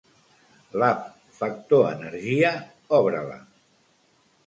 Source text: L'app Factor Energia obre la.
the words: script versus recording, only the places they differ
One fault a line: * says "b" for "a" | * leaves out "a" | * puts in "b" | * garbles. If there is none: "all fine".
all fine